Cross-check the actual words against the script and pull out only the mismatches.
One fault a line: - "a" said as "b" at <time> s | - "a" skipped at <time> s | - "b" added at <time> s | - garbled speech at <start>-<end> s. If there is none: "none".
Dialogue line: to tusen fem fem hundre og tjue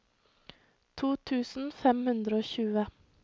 - "fem" skipped at 2.0 s